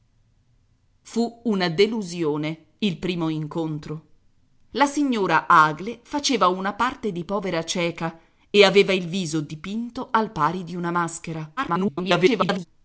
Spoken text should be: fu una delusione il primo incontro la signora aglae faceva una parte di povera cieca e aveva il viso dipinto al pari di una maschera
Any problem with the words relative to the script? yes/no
yes